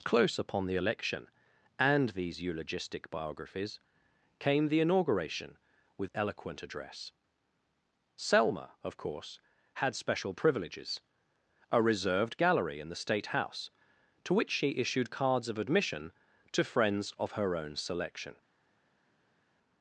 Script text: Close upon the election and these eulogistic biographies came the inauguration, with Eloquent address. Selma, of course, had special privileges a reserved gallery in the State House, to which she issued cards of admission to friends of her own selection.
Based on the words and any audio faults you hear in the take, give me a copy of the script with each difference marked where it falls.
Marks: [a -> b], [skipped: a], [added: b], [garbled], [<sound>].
Close upon the election and these eulogistic biographies came the inauguration, with Eloquent address. Selma, of course, had special privileges a reserved gallery in the State House, to which she issued cards of admission to friends of her own selection.